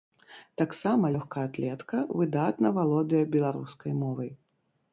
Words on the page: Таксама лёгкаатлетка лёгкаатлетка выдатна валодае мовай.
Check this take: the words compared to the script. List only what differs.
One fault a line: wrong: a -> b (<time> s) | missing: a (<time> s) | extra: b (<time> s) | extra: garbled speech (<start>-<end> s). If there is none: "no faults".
missing: лёгкаатлетка (2.0 s)
extra: беларускай (3.4 s)